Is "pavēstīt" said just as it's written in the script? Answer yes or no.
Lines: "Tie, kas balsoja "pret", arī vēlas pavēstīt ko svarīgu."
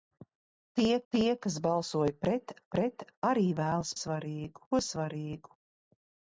no